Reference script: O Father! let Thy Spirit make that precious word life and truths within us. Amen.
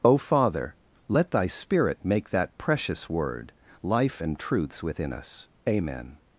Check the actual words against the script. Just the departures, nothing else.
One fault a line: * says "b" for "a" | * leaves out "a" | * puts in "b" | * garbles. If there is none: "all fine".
all fine